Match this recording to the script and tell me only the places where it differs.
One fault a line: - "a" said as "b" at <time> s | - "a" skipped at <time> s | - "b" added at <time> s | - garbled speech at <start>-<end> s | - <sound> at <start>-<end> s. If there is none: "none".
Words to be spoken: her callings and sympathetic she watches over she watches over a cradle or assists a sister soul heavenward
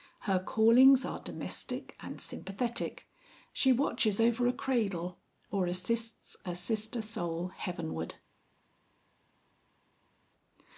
- "are domestic" added at 1.1 s
- "she watches over" skipped at 4.5 s